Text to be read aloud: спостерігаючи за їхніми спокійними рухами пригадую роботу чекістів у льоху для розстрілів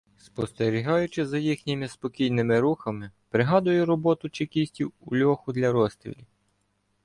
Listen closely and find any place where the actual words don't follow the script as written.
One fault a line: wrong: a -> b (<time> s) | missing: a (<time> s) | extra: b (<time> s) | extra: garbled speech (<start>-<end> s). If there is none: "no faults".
no faults